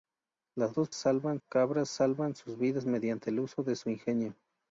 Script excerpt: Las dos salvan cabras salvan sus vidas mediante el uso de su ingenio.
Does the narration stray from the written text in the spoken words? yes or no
no